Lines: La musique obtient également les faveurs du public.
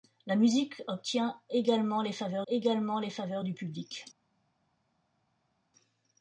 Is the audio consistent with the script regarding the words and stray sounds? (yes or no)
no